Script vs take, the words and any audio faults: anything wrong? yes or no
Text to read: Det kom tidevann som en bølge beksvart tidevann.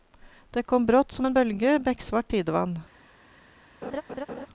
yes